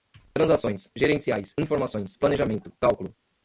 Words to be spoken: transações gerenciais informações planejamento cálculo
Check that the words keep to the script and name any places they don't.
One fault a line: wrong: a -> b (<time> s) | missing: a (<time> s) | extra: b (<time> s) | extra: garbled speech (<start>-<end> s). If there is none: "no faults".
no faults